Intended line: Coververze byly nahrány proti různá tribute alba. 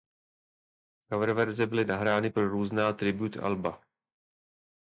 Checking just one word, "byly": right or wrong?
right